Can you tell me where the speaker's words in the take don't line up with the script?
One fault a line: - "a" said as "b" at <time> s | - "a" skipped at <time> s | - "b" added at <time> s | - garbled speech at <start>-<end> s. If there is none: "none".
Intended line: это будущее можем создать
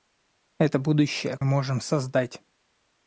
none